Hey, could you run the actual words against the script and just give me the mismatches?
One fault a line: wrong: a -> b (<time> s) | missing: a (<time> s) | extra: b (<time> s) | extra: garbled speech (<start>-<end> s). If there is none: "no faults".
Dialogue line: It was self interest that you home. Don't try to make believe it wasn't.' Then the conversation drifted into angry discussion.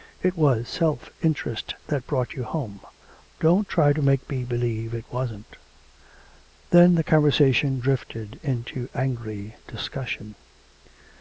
extra: brought (2.1 s)
extra: me (4.3 s)